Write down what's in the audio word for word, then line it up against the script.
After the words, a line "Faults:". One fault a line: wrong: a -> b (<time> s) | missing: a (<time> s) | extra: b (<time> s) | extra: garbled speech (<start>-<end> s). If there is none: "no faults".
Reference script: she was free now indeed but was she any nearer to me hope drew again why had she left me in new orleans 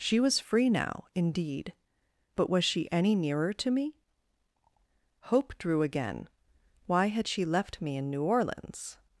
she was free now indeed but was she any nearer to me hope drew again why had she left me in new orleans
Faults:
no faults